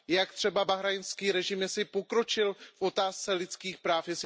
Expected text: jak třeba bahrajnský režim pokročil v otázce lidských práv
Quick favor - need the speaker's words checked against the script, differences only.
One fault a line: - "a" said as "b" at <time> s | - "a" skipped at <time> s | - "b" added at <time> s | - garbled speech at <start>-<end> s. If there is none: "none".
none